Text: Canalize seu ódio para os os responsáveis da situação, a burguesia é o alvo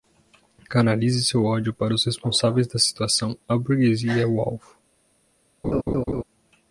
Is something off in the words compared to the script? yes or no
yes